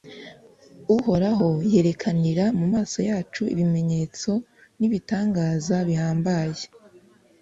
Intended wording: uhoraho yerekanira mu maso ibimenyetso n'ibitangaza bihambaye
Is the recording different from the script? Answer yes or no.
yes